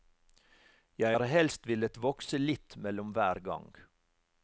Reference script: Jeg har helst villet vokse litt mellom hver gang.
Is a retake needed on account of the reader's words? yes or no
no